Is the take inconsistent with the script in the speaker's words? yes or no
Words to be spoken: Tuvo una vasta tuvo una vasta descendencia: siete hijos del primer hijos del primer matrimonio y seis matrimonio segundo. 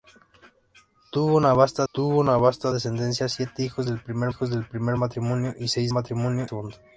no